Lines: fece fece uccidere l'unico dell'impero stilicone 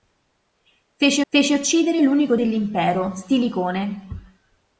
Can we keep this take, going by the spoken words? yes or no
yes